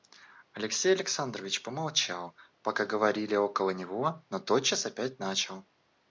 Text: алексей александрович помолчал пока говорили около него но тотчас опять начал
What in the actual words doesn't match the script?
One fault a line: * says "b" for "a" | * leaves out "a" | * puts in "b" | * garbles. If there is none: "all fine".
all fine